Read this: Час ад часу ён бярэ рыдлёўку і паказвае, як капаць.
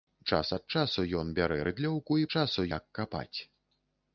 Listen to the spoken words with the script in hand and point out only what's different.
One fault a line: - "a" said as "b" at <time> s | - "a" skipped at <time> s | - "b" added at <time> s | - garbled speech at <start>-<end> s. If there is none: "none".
- "паказвае" said as "часу" at 2.4 s